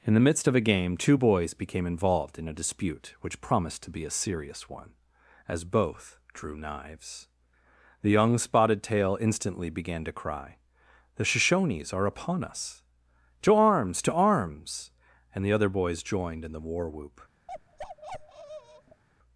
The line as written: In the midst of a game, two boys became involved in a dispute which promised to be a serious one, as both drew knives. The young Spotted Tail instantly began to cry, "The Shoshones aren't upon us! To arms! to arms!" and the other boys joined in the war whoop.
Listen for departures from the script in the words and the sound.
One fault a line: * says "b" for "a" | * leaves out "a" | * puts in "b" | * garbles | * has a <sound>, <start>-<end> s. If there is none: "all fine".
* says "are" for "aren't"
* has a bark, 17.5-19.0 s